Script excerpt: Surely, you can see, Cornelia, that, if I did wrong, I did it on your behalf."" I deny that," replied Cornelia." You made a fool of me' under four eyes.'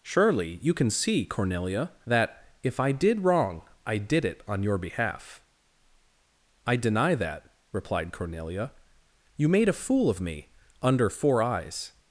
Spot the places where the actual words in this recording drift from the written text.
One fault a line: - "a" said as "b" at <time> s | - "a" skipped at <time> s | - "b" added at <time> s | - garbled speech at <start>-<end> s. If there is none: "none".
none